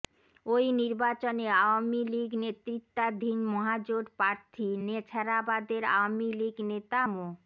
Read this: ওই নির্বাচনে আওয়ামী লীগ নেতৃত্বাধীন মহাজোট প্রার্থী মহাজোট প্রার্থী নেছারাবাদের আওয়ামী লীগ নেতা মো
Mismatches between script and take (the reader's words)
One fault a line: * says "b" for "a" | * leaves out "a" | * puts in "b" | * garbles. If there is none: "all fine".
* leaves out "মহাজোট প্রার্থী"